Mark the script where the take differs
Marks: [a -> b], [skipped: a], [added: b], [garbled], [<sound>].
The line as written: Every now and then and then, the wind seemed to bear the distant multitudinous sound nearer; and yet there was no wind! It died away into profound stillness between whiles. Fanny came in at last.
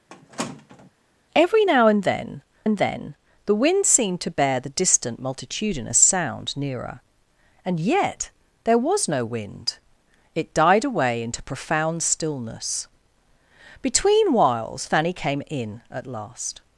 [squeak] Every now and then and then, the wind seemed to bear the distant multitudinous sound nearer; and yet there was no wind! It died away into profound stillness between whiles. Fanny came in at last.